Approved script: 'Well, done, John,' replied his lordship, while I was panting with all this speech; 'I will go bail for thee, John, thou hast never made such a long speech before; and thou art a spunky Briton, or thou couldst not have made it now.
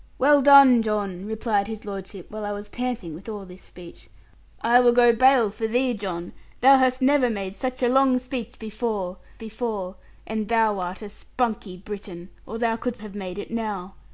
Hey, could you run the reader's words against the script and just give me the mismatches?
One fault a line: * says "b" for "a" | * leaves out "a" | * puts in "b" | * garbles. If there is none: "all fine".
* puts in "before"
* leaves out "not"